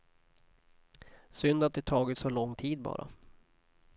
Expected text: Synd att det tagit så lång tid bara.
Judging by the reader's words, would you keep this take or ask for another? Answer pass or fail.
pass